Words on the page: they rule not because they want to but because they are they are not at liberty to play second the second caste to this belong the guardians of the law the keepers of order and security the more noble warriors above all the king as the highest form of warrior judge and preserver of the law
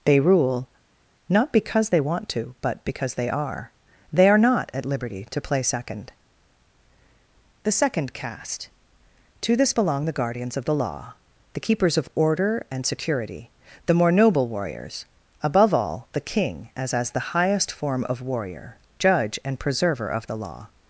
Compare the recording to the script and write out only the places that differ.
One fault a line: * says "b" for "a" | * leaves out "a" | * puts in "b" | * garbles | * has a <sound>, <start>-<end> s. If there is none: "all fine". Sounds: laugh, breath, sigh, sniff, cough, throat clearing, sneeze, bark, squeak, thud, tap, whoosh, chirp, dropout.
* puts in "as"